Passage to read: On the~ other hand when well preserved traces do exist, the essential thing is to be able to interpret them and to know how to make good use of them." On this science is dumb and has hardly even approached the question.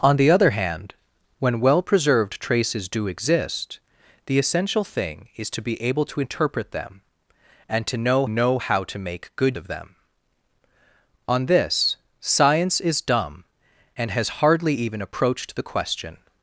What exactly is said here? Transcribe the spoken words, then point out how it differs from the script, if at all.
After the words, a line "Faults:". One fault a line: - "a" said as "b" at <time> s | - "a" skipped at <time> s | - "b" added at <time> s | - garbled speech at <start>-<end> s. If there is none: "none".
On the~ other hand when well preserved traces do exist, the essential thing is to be able to interpret them and to know know how to make good of them." On this science is dumb and has hardly even approached the question.
Faults:
- "know" added at 8.3 s
- "use" skipped at 9.6 s